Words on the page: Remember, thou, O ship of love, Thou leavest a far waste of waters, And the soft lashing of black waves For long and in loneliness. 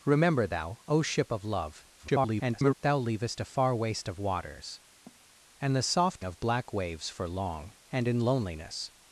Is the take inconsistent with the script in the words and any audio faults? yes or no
yes